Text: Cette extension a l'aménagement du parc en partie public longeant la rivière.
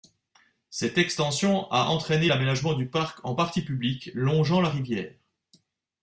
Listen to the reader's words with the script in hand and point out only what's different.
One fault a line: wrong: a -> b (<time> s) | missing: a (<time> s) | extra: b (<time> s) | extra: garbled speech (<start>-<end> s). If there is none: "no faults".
extra: entraîné (1.9 s)